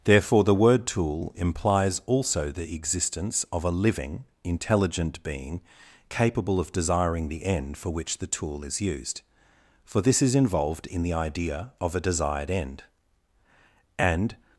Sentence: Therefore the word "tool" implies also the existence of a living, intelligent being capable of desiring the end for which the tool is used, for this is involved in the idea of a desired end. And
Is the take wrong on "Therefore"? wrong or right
right